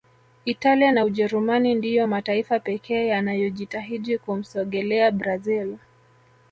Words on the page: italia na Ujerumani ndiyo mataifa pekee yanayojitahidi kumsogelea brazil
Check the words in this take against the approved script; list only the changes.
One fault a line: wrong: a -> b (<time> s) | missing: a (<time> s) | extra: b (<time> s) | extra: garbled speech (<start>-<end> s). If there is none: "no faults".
no faults